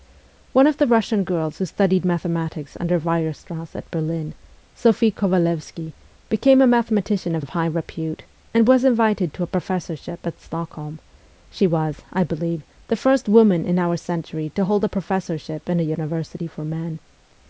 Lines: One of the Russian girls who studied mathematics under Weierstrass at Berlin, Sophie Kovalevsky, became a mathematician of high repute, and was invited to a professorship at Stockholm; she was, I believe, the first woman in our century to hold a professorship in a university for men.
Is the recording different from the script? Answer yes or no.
yes